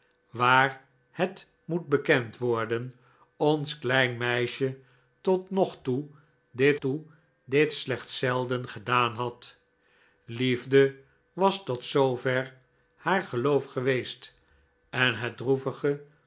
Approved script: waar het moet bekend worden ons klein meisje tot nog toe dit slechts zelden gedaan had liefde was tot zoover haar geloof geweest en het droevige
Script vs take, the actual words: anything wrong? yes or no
yes